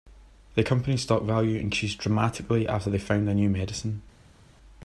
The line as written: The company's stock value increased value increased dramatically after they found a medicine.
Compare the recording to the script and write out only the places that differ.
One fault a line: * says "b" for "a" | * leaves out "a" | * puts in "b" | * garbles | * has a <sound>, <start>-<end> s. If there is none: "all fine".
* leaves out "value increased"
* puts in "new"